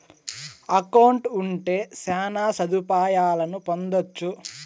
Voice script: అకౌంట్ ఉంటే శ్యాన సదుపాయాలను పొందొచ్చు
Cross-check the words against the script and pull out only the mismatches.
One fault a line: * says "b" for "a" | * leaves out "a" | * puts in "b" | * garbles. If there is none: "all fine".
all fine